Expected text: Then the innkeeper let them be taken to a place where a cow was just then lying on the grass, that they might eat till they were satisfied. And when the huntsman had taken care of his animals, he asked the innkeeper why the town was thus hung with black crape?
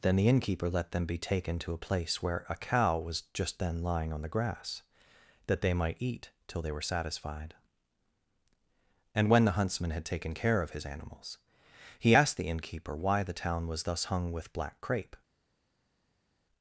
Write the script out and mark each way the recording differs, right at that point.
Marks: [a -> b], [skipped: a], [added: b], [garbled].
Then the innkeeper let them be taken to a place where a cow was just then lying on the grass, that they might eat till they were satisfied. And when the huntsman had taken care of his animals, he asked the innkeeper why the town was thus hung with black crape?